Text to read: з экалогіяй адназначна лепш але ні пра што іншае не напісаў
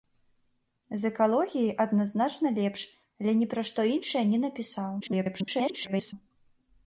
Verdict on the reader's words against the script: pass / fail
fail